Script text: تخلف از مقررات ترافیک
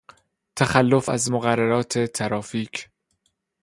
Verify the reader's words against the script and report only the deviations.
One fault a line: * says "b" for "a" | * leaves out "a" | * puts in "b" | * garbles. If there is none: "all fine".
all fine